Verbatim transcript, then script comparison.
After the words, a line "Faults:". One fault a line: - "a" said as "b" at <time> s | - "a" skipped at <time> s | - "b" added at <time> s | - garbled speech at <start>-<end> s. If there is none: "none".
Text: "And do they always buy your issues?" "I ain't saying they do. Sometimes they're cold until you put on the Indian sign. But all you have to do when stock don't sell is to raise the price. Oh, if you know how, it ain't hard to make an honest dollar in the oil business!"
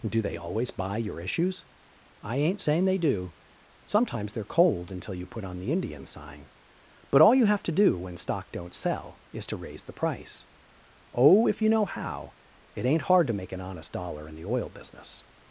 do they always buy your issues?" "I ain't saying they do. Sometimes they're cold until you put on the Indian sign. But all you have to do when stock don't sell is to raise the price. Oh, if you know how, it ain't hard to make an honest dollar in the oil business!"
Faults:
- "And" skipped at 0.1 s